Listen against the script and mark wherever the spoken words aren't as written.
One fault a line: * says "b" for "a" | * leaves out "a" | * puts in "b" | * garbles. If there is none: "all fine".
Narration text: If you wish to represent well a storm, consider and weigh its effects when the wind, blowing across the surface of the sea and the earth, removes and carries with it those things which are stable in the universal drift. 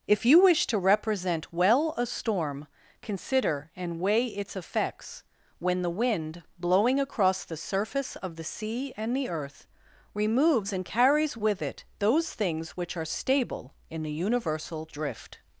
all fine